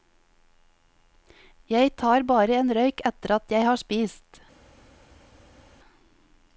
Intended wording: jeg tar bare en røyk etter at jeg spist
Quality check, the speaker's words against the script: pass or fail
fail